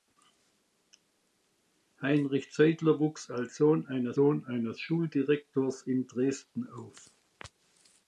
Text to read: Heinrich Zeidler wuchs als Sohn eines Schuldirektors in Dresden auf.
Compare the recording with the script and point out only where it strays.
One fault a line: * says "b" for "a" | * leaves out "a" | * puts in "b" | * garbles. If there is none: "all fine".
* puts in "Sohn eines"